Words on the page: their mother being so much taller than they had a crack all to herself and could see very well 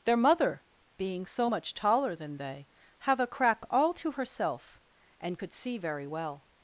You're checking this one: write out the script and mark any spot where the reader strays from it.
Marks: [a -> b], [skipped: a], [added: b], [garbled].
their mother being so much taller than they [had -> have] a crack all to herself and could see very well